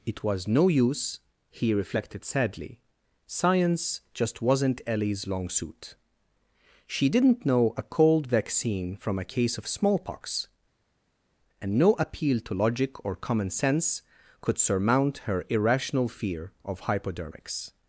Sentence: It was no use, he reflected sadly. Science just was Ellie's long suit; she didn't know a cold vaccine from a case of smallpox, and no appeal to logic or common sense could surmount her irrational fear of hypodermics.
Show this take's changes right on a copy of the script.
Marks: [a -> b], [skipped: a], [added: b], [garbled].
It was no use, he reflected sadly. Science just [was -> wasn't] Ellie's long suit; she didn't know a cold vaccine from a case of smallpox, and no appeal to logic or common sense could surmount her irrational fear of hypodermics.